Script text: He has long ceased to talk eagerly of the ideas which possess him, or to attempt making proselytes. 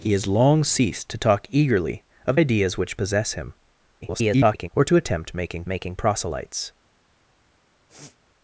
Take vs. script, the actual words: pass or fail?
fail